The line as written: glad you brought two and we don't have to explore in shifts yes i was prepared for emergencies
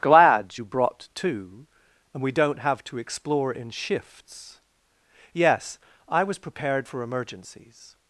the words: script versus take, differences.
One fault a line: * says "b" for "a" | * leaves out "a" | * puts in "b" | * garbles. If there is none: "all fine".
all fine